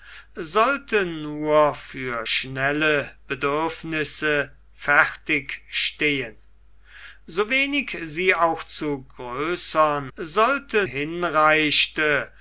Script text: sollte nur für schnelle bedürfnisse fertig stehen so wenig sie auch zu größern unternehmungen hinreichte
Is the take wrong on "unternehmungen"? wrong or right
wrong